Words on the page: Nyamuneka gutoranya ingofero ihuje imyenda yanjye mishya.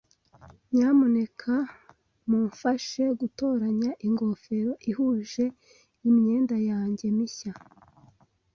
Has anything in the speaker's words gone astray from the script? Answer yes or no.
yes